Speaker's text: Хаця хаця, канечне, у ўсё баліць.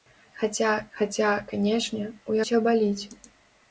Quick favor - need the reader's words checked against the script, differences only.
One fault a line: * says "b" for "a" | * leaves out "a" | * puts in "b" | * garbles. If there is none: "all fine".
all fine